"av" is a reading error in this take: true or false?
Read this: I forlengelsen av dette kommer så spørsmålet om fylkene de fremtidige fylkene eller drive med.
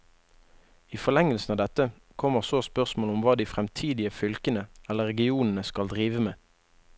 false